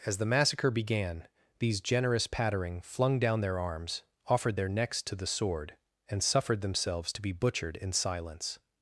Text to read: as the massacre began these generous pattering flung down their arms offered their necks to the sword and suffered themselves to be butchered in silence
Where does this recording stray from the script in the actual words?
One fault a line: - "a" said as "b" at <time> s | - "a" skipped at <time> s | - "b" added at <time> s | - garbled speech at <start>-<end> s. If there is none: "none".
none